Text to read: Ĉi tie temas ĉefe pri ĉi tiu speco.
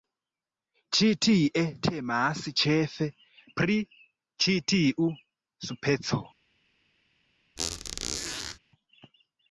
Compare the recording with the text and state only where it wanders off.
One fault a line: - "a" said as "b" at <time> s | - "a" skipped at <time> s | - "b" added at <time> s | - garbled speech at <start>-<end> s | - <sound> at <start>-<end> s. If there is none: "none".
- squeak at 7.6-8.6 s